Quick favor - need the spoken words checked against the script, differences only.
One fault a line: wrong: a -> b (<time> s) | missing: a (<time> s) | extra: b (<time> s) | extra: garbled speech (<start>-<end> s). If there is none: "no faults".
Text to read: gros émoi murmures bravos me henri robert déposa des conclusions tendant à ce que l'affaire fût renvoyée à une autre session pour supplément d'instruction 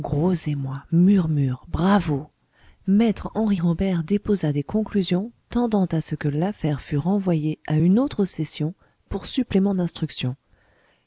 no faults